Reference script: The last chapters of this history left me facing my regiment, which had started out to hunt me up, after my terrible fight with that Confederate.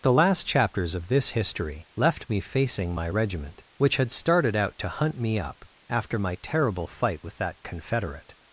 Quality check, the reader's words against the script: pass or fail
pass